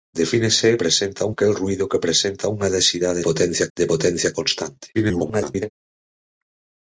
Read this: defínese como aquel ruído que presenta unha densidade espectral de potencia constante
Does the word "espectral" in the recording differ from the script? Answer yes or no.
yes